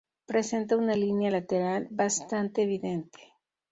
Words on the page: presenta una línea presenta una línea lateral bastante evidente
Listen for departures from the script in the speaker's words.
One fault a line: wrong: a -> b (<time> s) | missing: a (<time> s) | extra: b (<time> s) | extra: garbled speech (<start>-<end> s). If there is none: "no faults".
missing: presenta una línea (1.3 s)